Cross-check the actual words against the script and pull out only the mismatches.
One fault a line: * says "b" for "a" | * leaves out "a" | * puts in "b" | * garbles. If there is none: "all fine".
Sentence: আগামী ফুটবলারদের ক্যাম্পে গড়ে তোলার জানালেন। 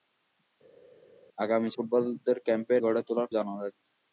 all fine